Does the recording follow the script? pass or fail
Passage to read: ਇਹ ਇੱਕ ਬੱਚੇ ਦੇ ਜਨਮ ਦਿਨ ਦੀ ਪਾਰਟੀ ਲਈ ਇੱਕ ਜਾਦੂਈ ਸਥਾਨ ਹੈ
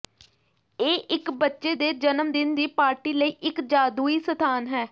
pass